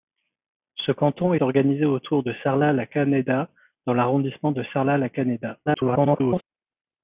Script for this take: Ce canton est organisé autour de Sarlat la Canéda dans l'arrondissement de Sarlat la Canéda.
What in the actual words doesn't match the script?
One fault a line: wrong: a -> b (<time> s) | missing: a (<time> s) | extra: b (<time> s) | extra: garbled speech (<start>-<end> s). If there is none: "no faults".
missing: est (1.4 s)
extra: garbled speech (5.7-6.4 s)